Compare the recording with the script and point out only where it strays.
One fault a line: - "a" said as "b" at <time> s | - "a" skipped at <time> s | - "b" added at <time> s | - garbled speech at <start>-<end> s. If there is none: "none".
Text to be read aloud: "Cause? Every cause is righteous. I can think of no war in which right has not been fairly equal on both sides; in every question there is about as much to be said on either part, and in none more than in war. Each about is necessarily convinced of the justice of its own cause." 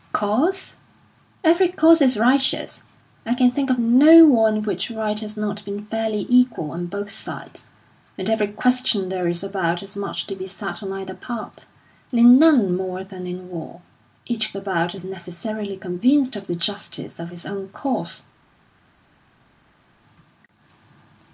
none